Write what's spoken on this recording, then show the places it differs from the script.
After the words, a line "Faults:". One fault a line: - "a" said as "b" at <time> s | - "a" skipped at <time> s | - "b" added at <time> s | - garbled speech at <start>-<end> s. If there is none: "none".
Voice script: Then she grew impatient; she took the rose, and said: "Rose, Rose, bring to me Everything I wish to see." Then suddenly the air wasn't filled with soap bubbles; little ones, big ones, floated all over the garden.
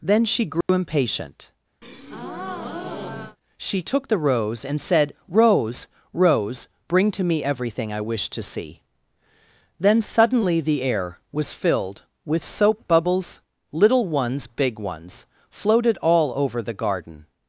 Then she grew impatient; she took the rose, and said: "Rose, Rose, bring to me Everything I wish to see." Then suddenly the air was filled with soap bubbles; little ones, big ones, floated all over the garden.
Faults:
- "wasn't" said as "was" at 11.3 s